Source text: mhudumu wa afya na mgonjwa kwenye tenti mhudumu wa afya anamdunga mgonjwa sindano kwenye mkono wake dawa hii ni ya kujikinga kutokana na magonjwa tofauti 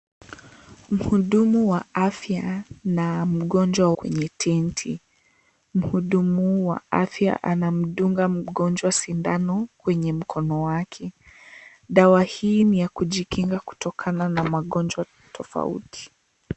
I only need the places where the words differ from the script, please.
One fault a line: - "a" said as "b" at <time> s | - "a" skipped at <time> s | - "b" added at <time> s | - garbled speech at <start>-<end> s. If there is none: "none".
none